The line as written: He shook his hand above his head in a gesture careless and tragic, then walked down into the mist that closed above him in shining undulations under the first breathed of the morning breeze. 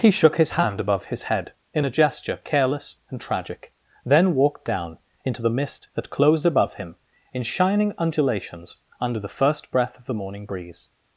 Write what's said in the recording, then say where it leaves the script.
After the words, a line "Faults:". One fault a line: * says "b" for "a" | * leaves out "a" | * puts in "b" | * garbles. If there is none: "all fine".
He shook his hand above his head in a gesture careless and tragic, then walked down into the mist that closed above him in shining undulations under the first breath of the morning breeze.
Faults:
* says "breath" for "breathed"